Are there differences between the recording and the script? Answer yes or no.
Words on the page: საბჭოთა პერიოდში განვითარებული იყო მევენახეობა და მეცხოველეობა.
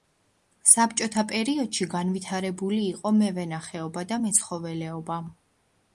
no